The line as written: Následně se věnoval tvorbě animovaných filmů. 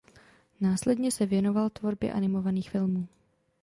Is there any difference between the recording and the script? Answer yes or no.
no